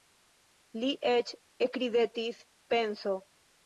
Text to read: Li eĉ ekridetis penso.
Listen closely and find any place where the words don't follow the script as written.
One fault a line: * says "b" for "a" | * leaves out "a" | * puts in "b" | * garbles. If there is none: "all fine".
all fine